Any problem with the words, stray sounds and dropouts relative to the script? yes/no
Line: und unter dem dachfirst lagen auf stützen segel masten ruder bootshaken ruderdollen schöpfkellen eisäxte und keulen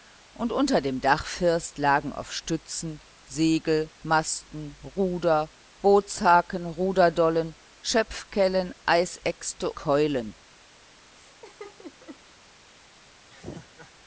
yes